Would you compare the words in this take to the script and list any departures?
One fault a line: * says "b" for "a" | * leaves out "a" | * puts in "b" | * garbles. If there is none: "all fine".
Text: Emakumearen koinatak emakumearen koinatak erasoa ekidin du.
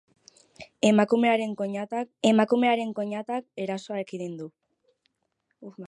all fine